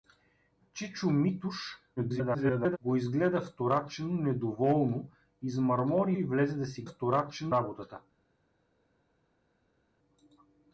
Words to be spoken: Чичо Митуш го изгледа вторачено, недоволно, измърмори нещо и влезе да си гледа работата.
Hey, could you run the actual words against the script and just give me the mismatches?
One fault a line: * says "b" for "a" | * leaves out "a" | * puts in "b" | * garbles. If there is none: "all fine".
* garbles
* leaves out "нещо"
* says "вторачено" for "гледа"